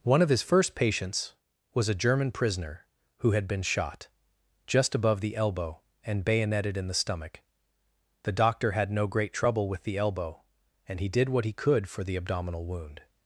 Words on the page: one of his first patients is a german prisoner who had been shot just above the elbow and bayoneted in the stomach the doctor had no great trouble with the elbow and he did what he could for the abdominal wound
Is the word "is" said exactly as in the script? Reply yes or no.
no